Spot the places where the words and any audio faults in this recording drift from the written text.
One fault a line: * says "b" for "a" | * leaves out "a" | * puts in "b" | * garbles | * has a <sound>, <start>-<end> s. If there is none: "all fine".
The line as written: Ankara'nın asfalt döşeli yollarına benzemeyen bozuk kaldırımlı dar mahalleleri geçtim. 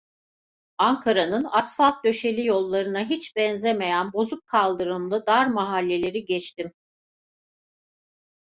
* puts in "hiç"